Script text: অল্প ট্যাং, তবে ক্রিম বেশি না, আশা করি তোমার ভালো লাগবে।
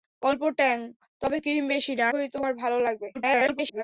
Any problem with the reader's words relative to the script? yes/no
yes